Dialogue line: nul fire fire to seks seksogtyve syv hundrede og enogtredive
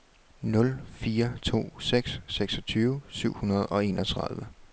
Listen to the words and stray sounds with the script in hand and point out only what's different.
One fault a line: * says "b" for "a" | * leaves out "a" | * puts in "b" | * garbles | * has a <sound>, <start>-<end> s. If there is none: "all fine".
* leaves out "fire"